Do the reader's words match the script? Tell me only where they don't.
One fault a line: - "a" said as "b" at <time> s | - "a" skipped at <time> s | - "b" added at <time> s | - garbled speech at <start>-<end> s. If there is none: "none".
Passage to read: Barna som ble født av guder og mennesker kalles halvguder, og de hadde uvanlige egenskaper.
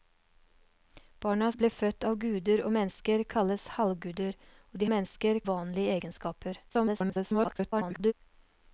- "som" skipped at 1.5 s
- "hadde" said as "mennesker" at 4.9 s
- garbled speech at 6.7-8.1 s